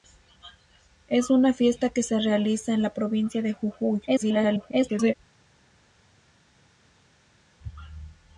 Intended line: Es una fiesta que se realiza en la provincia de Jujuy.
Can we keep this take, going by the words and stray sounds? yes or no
no